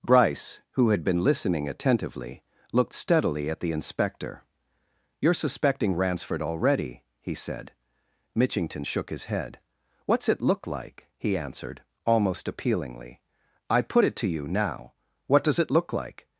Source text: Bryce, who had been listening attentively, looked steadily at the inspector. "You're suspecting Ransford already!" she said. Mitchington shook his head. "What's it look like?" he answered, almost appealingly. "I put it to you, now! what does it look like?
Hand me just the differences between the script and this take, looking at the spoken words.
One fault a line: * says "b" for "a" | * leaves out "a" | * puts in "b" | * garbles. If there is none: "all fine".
* says "he" for "she"